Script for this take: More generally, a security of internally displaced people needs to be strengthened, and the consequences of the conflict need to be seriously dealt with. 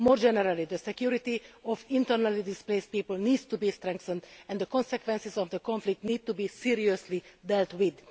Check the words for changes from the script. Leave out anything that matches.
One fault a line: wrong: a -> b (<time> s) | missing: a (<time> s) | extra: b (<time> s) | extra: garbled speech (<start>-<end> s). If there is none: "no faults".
wrong: a -> the (0.7 s)